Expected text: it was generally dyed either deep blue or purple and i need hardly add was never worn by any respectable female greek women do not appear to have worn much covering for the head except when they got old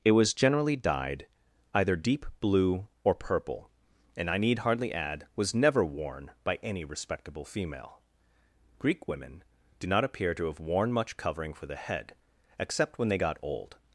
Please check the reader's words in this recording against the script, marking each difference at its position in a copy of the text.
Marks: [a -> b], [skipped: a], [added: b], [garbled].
it was generally dyed either deep blue or purple and i need hardly add was never worn by any respectable female greek women do not appear to have worn much covering for the head except when they got old